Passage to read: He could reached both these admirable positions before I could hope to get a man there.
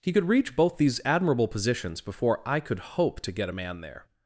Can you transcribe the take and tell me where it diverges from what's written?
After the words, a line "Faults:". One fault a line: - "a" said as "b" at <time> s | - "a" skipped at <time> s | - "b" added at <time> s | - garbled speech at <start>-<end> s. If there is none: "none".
He could reach both these admirable positions before I could hope to get a man there.
Faults:
- "reached" said as "reach" at 0.3 s